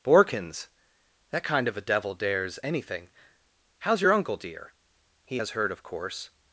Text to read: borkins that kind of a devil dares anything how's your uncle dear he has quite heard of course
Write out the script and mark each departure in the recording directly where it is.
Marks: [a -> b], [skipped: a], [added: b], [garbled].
borkins that kind of a devil dares anything how's your uncle dear he has [skipped: quite] heard of course